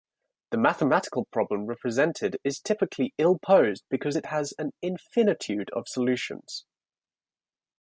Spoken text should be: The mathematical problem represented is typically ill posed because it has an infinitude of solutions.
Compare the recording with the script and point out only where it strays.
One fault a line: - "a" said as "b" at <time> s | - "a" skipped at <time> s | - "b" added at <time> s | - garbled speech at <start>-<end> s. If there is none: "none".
none